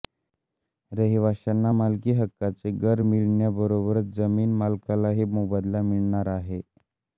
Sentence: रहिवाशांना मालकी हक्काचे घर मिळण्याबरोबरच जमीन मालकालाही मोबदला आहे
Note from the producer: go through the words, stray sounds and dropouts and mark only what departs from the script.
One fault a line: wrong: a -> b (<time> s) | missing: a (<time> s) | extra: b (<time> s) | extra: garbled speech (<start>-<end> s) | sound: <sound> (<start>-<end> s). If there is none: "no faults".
extra: मिळणार (5.8 s)